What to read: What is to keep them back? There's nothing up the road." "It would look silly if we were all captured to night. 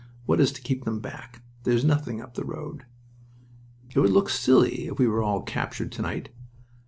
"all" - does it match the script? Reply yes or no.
yes